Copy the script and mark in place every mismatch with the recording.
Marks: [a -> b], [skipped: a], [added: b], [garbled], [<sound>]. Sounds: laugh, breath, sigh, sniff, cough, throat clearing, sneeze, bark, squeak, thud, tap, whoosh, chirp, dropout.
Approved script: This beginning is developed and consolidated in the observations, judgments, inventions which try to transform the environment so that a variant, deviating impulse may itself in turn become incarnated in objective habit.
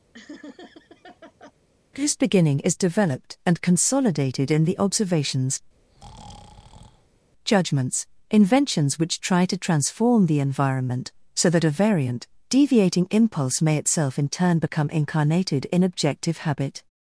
[laugh] This beginning is developed and consolidated in the observations, [breath] judgments, inventions which try to transform the environment so that a variant, deviating impulse may itself in turn become incarnated in objective habit.